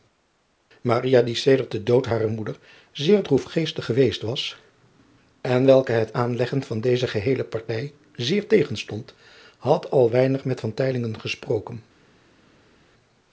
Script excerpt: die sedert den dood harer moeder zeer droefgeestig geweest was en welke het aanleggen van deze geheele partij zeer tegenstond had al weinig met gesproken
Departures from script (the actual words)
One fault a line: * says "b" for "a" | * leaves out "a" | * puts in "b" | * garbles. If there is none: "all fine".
all fine